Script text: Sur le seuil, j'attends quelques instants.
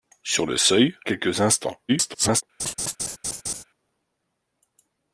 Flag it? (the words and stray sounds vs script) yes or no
yes